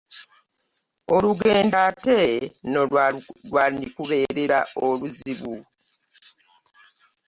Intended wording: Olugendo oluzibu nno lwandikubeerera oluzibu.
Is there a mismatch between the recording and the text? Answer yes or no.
yes